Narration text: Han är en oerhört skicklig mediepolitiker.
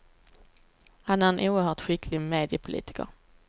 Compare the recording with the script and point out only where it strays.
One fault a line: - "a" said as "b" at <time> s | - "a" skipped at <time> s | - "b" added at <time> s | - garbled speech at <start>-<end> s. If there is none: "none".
none